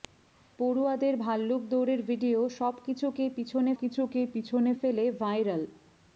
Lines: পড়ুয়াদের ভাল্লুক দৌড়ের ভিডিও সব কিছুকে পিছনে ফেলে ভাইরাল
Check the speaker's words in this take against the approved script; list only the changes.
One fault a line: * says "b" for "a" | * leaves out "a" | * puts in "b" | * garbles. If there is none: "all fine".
* puts in "কিছুকে পিছনে"